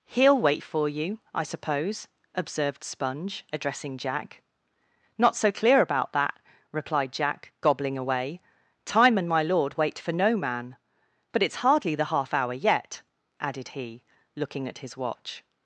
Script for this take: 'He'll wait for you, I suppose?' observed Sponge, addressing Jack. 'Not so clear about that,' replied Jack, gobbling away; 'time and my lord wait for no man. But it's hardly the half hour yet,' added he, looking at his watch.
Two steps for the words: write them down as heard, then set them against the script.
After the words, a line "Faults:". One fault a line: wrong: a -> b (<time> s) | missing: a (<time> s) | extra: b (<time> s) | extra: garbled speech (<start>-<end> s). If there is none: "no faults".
'He'll wait for you, I suppose?' observed Sponge, addressing Jack. 'Not so clear about that,' replied Jack, gobbling away; 'time and my lord wait for no man. But it's hardly the half hour yet,' added he, looking at his watch.
Faults:
no faults